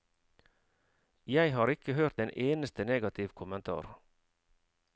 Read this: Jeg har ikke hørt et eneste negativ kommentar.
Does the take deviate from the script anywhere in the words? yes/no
yes